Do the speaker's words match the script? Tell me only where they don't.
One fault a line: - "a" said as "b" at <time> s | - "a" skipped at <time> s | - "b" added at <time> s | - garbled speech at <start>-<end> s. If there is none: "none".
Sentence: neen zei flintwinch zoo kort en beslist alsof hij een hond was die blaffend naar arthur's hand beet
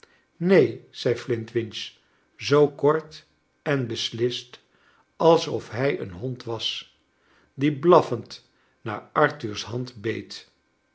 none